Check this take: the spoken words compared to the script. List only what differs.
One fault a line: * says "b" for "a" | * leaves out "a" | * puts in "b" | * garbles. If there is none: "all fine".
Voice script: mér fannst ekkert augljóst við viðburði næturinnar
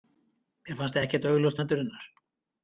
* leaves out "við viðburði"